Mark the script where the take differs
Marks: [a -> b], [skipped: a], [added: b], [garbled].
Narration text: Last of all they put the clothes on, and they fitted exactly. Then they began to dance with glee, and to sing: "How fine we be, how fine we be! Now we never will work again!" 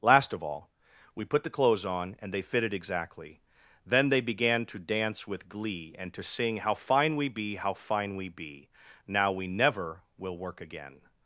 Last of all [they -> we] put the clothes on, and they fitted exactly. Then they began to dance with glee, and to sing: "How fine we be, how fine we be! Now we never will work again!"